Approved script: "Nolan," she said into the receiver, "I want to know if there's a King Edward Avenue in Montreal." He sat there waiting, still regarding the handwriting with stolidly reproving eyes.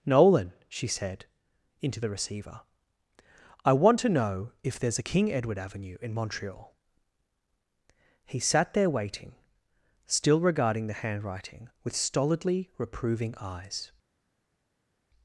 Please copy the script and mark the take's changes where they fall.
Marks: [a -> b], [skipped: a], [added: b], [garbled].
"Nolan," she said into the receiver, "I want to know if there's a King Edward Avenue in Montreal." He sat there waiting, still regarding the handwriting with stolidly reproving eyes.